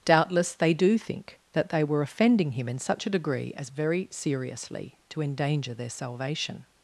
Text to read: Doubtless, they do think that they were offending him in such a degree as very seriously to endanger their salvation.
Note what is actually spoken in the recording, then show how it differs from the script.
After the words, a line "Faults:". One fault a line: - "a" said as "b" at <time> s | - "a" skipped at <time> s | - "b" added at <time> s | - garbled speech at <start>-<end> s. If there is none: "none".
Doubtless, they do think that they were offending him in such a degree as very seriously to endanger their salvation.
Faults:
none